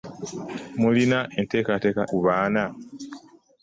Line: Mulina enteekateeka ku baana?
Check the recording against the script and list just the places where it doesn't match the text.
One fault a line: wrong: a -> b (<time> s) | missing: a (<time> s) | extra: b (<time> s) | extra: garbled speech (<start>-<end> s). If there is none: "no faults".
no faults